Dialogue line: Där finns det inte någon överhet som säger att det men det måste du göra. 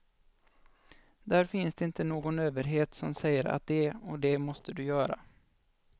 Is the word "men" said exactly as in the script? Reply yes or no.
no